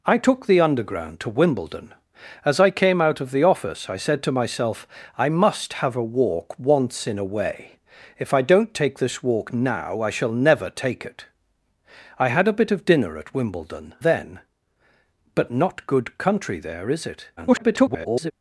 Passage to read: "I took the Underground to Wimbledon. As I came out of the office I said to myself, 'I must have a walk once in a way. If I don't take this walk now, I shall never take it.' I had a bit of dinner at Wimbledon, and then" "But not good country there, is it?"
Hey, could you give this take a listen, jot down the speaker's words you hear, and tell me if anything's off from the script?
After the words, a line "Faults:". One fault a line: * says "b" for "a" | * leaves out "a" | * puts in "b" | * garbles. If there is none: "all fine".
"I took the Underground to Wimbledon. As I came out of the office I said to myself, 'I must have a walk once in a way. If I don't take this walk now, I shall never take it.' I had a bit of dinner at Wimbledon, then" "But not good country there, is it?" [garbled]
Faults:
* leaves out "and"
* garbles